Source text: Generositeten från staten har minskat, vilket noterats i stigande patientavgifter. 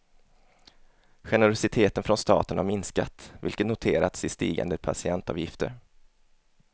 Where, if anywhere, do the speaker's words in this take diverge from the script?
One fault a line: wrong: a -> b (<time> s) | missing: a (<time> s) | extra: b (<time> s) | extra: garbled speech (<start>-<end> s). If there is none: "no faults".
no faults